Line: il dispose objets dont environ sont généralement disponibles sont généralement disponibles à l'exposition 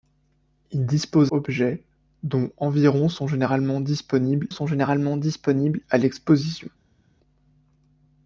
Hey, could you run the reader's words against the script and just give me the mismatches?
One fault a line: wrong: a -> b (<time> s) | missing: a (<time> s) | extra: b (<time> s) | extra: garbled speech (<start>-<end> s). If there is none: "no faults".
no faults